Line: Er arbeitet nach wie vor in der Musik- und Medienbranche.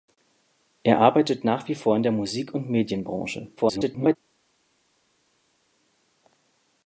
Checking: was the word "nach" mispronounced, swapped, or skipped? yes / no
no